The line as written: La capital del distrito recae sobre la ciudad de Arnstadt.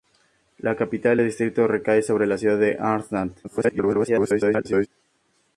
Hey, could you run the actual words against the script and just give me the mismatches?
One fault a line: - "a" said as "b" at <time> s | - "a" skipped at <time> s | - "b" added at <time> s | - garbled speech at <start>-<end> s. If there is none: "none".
- garbled speech at 3.4-4.9 s